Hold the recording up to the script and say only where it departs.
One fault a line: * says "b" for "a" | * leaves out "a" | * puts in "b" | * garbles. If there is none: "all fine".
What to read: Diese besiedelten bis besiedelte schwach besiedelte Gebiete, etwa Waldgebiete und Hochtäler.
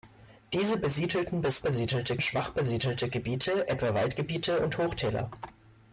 all fine